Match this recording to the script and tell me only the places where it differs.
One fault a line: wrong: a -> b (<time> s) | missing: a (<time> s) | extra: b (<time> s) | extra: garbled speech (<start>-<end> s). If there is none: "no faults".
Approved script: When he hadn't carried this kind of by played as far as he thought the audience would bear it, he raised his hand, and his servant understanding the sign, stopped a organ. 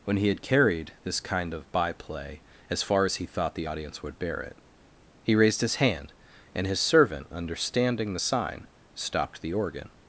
wrong: hadn't -> had (0.3 s)
wrong: played -> play (1.9 s)
wrong: a -> the (9.4 s)